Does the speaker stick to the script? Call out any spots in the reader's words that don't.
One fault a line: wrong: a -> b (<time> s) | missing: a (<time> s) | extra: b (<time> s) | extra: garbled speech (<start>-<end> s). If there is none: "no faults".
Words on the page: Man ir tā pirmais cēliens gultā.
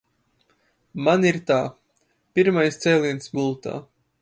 no faults